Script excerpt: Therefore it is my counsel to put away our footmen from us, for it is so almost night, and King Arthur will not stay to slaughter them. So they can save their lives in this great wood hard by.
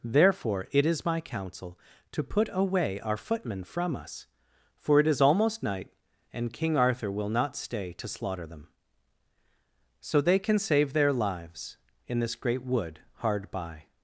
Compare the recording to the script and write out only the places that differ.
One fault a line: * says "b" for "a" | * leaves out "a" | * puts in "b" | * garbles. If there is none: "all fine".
* leaves out "so"